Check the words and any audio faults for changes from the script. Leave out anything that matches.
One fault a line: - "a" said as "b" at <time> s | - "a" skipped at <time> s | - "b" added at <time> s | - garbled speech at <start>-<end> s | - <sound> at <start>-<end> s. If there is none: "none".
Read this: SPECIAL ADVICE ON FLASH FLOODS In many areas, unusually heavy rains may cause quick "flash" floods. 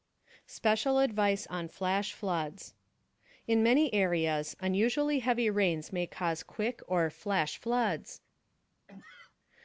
- "or" added at 6.9 s
- sneeze at 8.9-9.4 s